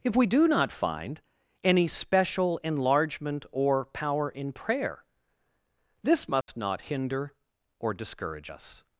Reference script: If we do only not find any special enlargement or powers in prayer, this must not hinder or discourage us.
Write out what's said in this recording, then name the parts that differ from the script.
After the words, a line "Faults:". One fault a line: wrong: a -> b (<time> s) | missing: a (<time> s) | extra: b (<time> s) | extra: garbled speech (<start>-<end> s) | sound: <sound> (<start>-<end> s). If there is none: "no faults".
If we do not find any special enlargement or power in prayer, this must not hinder or discourage us.
Faults:
missing: only (0.5 s)
wrong: powers -> power (3.9 s)
sound: dropout (6.4-6.5 s)